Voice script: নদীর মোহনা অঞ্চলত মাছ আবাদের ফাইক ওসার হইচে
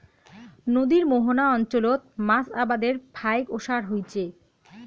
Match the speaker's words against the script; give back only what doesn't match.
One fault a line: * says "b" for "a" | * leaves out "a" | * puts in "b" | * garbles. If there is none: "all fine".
all fine